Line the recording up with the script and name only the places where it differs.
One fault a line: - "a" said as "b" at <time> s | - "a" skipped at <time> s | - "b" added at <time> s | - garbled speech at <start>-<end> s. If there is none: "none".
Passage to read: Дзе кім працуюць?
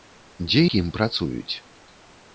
none